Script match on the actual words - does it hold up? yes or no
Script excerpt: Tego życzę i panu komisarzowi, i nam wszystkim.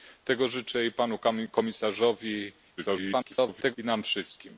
no